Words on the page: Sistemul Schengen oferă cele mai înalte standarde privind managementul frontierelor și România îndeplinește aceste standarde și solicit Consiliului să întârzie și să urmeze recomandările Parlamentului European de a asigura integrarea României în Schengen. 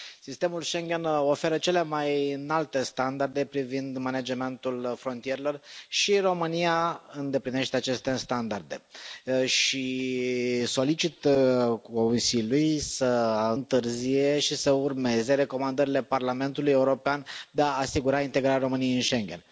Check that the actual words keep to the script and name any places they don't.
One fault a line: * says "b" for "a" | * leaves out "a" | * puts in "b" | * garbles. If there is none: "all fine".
all fine